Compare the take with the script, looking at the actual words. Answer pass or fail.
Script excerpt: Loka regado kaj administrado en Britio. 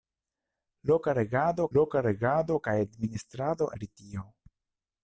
fail